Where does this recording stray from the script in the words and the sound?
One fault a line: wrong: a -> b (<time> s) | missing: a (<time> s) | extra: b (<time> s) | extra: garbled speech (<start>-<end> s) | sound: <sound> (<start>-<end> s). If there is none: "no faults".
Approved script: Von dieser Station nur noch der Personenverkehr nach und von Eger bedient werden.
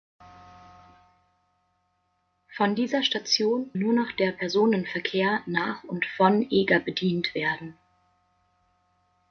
no faults